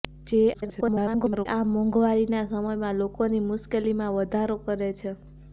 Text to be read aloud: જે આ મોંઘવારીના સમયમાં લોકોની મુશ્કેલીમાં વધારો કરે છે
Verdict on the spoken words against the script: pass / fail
fail